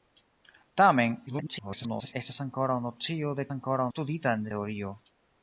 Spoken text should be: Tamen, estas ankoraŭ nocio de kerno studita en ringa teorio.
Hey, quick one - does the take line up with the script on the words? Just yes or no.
no